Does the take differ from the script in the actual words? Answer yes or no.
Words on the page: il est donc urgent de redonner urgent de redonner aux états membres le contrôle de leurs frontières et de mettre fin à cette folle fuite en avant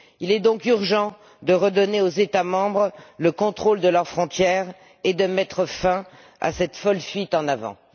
yes